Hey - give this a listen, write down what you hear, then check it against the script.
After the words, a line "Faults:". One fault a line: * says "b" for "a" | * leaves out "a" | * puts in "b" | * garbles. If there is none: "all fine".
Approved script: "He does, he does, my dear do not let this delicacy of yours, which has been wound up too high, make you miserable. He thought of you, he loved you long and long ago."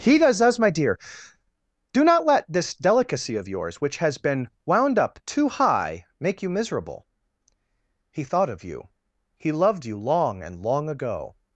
"He does, does, my dear do not let this delicacy of yours, which has been wound up too high, make you miserable. He thought of you, he loved you long and long ago."
Faults:
* leaves out "he"